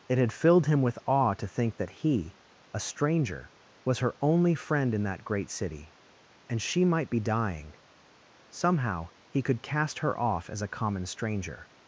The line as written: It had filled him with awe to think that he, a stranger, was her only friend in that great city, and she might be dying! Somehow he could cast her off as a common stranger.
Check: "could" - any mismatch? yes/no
no